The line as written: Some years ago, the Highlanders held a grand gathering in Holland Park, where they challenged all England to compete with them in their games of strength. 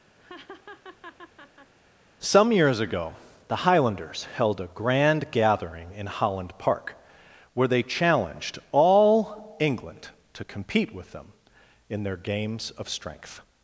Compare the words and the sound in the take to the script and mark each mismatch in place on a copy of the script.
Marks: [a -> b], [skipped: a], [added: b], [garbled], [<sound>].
[laugh] Some years ago, the Highlanders held a grand gathering in Holland Park, where they challenged all England to compete with them in their games of strength.